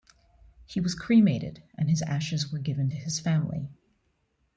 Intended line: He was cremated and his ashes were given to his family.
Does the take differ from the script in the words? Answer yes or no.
no